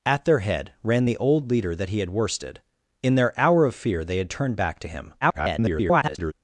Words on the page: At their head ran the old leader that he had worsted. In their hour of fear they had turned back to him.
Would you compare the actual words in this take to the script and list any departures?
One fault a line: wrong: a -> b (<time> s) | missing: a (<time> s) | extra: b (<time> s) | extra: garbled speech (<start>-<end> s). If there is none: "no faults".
extra: garbled speech (5.2-6.3 s)